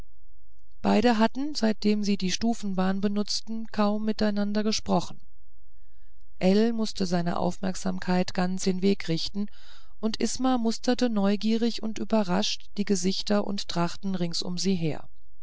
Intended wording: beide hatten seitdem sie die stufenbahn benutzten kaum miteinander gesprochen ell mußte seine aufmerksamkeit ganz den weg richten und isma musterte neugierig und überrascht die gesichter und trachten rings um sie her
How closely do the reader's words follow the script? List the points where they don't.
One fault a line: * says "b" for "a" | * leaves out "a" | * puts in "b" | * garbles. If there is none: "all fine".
all fine